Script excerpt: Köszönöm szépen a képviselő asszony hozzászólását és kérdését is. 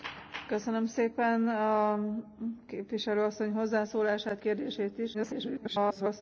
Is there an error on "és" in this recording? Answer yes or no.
yes